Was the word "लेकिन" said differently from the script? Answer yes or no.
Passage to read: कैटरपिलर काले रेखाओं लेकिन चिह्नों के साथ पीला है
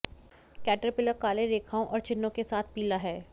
yes